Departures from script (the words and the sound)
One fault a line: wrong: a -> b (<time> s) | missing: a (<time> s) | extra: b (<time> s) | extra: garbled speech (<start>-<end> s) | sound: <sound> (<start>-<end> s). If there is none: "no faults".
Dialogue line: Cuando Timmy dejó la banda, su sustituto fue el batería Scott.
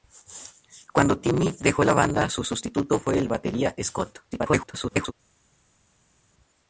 extra: garbled speech (4.3-5.1 s)